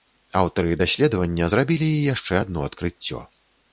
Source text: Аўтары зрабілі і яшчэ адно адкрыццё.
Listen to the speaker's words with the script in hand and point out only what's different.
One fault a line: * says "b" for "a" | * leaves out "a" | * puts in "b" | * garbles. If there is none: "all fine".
* puts in "даследавання"